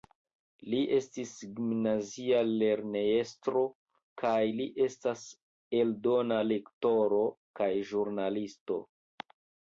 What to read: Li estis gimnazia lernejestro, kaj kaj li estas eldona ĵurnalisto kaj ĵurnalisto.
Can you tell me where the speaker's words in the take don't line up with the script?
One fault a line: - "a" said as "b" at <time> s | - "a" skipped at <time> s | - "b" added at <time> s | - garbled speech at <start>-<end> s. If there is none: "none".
- "kaj" skipped at 4.4 s
- "ĵurnalisto" said as "lektoro" at 6.5 s